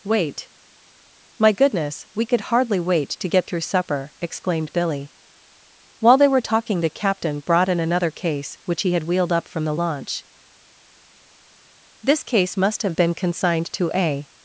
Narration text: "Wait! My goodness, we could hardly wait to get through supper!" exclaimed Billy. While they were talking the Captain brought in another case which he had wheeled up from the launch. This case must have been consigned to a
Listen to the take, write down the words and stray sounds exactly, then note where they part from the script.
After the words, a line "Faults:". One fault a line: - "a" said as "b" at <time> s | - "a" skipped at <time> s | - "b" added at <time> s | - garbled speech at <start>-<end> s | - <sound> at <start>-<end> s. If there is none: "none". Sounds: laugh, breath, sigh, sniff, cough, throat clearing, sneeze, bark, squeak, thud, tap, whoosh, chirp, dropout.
"Wait! My goodness, we could hardly wait to get through supper!" exclaimed Billy. While they were talking the Captain brought in another case which he had wheeled up from the launch. This case must have been consigned to a
Faults:
none